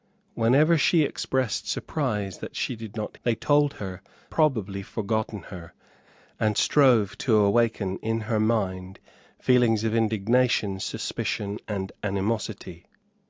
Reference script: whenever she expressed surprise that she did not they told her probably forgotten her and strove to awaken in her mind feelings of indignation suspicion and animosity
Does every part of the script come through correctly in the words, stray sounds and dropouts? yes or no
yes